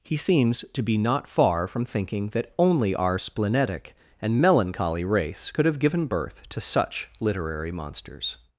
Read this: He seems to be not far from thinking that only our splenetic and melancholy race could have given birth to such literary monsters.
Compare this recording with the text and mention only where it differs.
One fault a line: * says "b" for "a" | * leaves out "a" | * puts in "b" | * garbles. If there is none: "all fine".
all fine